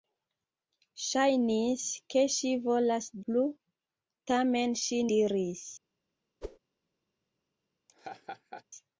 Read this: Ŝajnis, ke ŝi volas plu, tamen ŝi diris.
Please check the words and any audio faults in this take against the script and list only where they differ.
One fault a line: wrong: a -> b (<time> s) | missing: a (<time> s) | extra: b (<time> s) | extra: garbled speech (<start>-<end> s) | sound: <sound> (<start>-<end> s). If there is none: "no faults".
sound: whoosh (6.4-6.6 s)
sound: laugh (7.9-8.6 s)